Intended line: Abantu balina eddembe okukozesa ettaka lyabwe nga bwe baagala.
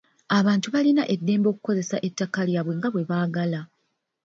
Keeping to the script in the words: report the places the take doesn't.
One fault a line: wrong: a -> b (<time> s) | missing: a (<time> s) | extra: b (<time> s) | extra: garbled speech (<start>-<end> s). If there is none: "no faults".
no faults